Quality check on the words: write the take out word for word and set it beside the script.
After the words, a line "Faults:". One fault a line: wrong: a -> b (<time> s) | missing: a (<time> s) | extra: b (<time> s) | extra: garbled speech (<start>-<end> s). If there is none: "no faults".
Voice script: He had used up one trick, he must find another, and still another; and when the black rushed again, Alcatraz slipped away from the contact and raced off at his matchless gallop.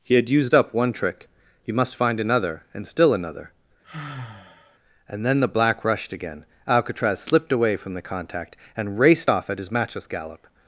He had used up one trick, he must find another, and still another; and then the black rushed again, Alcatraz slipped away from the contact and raced off at his matchless gallop.
Faults:
wrong: when -> then (5.2 s)